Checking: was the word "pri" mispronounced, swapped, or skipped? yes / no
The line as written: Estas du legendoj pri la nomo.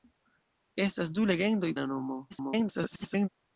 yes